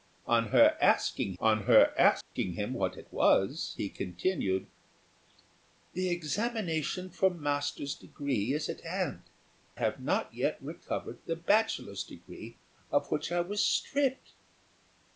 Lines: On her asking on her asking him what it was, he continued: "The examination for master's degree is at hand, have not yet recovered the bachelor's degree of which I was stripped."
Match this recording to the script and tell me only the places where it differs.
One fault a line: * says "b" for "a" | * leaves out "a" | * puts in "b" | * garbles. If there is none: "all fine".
all fine